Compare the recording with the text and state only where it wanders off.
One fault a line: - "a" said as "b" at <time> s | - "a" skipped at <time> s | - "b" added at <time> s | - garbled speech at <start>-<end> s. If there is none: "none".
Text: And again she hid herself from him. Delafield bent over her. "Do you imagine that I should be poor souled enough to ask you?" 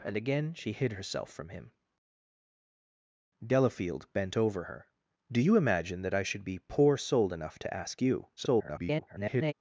- garbled speech at 8.4-9.5 s